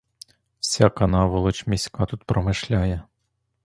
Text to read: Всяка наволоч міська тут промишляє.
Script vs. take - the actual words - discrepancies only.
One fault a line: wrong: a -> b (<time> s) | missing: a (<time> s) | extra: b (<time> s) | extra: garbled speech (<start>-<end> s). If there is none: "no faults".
no faults